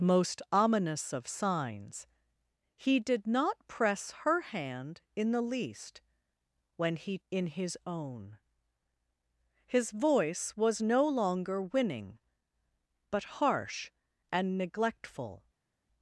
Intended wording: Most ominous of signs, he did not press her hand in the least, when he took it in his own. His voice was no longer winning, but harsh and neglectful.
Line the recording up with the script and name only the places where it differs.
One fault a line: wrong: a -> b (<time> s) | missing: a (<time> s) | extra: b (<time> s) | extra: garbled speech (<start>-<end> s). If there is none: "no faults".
missing: took it (7.2 s)